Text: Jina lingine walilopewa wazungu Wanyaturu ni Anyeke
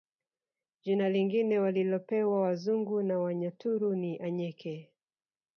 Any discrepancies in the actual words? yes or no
yes